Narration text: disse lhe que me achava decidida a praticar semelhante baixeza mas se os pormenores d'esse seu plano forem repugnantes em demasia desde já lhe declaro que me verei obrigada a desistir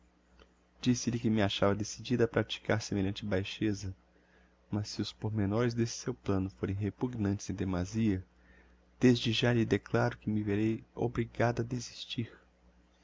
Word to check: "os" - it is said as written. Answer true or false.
true